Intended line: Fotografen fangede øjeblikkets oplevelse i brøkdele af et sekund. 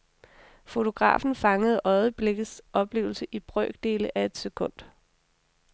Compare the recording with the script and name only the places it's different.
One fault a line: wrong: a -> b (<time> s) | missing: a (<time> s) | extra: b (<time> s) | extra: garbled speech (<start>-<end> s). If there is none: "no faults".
no faults